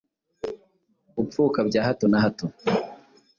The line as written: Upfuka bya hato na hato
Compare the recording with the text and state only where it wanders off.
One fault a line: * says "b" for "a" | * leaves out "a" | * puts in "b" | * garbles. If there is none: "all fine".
all fine